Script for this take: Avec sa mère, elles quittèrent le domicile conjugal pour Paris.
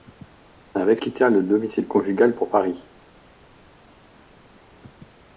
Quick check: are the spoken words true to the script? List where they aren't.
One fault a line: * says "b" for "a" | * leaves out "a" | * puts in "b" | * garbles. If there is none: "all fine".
* leaves out "sa mère elles"